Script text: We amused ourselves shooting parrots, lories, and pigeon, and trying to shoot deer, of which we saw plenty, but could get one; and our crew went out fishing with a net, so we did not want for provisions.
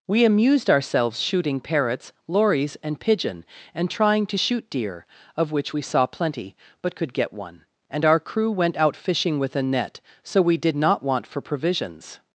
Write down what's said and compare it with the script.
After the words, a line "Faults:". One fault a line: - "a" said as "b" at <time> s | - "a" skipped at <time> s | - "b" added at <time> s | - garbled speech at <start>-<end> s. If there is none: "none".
We amused ourselves shooting parrots, lories, and pigeon, and trying to shoot deer, of which we saw plenty, but could get one; and our crew went out fishing with a net, so we did not want for provisions.
Faults:
none